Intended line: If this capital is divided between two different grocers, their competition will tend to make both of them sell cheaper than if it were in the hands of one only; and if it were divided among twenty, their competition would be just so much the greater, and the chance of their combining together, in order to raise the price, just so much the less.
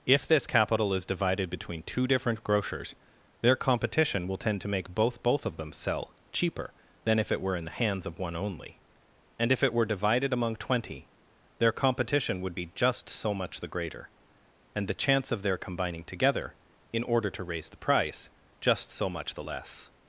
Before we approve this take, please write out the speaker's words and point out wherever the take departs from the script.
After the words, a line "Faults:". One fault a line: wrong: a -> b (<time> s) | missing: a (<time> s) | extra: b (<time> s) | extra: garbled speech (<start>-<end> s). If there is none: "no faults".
If this capital is divided between two different grocers, their competition will tend to make both both of them sell cheaper than if it were in the hands of one only; and if it were divided among twenty, their competition would be just so much the greater, and the chance of their combining together, in order to raise the price, just so much the less.
Faults:
extra: both (5.2 s)